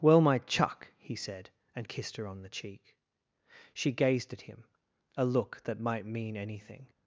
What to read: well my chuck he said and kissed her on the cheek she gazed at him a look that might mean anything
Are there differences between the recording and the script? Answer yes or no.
no